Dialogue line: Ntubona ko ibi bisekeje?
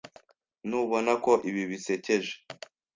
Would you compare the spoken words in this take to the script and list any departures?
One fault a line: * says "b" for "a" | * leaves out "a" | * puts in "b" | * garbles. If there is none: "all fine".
all fine